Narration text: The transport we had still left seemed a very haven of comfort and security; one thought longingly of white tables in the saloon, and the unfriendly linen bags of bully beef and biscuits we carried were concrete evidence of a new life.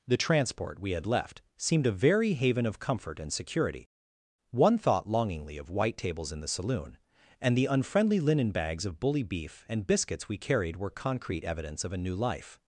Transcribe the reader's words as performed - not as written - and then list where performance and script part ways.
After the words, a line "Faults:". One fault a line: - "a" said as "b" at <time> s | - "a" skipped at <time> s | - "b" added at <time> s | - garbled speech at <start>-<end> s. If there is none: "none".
The transport we had left seemed a very haven of comfort and security; one thought longingly of white tables in the saloon, and the unfriendly linen bags of bully beef and biscuits we carried were concrete evidence of a new life.
Faults:
- "still" skipped at 1.1 s